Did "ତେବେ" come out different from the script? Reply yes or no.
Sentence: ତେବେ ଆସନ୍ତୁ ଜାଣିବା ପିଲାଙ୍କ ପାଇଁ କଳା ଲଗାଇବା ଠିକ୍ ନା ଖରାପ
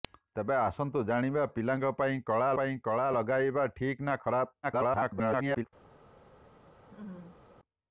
no